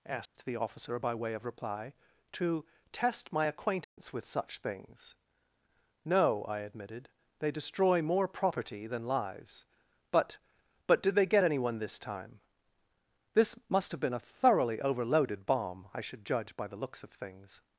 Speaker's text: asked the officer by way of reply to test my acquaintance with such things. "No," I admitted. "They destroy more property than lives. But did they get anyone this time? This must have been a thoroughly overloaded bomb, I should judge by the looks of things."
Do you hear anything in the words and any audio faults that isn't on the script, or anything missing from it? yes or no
yes